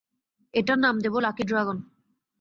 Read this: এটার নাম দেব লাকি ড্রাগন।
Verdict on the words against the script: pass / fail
pass